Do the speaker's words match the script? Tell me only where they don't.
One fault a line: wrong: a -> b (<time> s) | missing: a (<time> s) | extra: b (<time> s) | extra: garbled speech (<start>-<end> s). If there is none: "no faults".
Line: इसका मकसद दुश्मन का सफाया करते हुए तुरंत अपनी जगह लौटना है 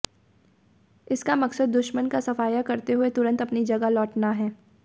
no faults